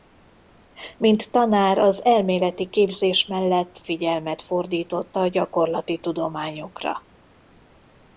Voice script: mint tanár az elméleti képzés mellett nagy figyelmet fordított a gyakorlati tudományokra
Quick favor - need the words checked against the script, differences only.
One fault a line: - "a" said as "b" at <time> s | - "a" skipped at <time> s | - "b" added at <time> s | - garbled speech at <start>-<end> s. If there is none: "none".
- "nagy" skipped at 3.8 s